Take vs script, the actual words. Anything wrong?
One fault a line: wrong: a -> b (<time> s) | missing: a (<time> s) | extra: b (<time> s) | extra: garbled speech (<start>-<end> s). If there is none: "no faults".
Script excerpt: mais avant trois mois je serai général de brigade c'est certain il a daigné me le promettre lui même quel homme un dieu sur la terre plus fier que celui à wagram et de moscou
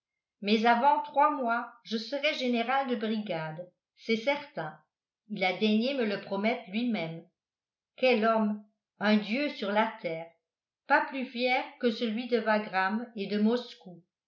extra: pas (10.9 s)
wrong: à -> de (12.3 s)